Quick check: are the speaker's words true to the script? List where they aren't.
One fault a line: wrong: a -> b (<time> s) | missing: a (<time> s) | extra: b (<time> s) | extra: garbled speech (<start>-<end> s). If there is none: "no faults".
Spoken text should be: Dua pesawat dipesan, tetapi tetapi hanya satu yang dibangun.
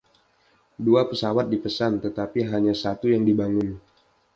missing: tetapi (2.5 s)